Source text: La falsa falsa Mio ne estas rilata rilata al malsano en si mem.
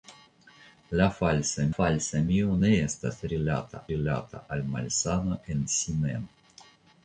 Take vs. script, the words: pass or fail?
pass